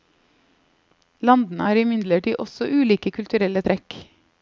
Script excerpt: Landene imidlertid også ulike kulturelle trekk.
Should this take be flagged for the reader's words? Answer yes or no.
yes